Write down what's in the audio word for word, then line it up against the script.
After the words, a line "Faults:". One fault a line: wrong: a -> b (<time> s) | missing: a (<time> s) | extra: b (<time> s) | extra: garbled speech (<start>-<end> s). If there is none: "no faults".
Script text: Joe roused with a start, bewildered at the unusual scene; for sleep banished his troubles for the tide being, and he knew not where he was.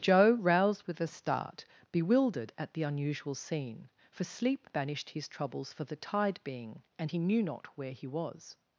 Joe roused with a start, bewildered at the unusual scene; for sleep banished his troubles for the tide being, and he knew not where he was.
Faults:
no faults